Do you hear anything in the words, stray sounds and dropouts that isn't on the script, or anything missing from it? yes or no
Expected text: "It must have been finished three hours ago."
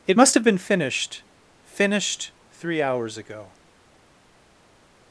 yes